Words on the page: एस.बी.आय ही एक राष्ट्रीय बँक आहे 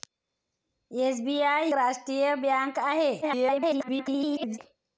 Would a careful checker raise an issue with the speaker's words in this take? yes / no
yes